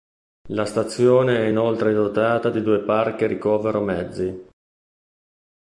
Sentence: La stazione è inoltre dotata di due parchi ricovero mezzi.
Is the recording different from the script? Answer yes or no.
no